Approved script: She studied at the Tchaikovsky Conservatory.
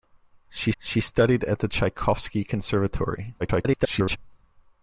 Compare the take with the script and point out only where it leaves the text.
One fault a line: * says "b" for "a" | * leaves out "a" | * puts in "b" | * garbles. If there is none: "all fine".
* puts in "she"
* garbles